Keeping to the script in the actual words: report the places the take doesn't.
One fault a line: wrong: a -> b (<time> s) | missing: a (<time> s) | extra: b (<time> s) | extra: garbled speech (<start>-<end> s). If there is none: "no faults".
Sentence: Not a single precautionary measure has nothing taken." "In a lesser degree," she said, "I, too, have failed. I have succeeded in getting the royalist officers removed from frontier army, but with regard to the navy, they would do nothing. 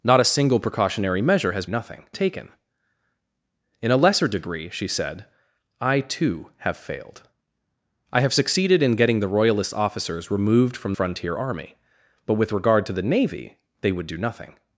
no faults